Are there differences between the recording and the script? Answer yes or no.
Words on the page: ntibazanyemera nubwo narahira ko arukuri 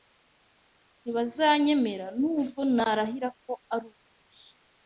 no